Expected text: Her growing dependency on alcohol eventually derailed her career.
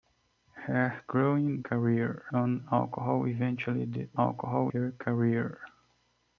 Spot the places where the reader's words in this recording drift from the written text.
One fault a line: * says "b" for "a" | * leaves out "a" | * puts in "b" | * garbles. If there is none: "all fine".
* says "career" for "dependency"
* says "alcohol" for "derailed"